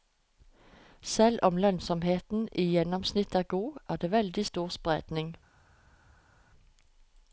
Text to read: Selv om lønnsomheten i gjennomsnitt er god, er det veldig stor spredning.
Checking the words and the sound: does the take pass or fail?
pass